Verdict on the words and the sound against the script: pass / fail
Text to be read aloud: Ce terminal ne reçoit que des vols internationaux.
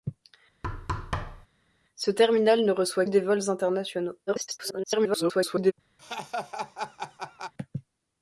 fail